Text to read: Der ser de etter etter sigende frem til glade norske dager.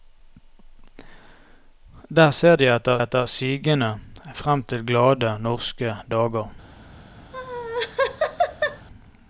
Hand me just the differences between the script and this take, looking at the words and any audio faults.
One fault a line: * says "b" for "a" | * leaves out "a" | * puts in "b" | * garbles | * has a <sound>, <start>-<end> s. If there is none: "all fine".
* has a laugh, 7.3-8.9 s